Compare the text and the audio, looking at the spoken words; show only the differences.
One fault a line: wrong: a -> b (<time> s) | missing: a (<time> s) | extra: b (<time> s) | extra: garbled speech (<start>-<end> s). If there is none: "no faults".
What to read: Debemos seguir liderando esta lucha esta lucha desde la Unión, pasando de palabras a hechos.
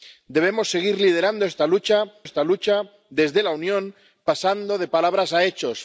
no faults